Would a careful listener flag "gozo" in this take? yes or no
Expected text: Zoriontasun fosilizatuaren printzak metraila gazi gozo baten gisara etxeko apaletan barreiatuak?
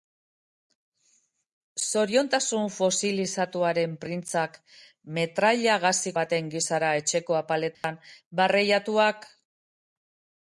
yes